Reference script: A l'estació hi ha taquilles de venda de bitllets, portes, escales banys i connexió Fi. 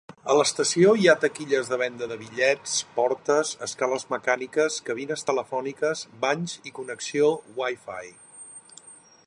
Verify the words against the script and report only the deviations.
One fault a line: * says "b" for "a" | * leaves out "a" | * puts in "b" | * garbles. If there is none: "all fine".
* puts in "mecàniques cabines telefòniques"
* puts in "Wi"